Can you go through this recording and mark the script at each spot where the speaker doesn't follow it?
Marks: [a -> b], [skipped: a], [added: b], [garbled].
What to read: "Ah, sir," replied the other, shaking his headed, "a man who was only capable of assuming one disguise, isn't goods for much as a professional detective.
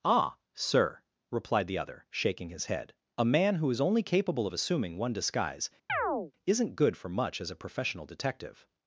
"Ah, sir," replied the other, shaking his [headed, -> head] "a man who [was -> is] only capable of assuming one disguise, isn't [goods -> good] for much as a professional detective.